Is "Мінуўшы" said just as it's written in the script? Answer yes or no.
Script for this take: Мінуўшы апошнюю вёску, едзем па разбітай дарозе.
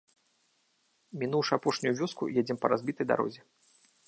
yes